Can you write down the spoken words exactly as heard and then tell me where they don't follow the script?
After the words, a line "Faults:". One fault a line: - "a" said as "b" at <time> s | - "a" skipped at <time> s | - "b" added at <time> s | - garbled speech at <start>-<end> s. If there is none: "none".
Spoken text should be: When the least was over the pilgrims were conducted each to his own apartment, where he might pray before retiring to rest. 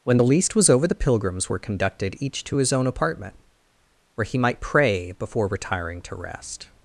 When the least was over the pilgrims were conducted each to his own apartment, where he might pray before retiring to rest.
Faults:
none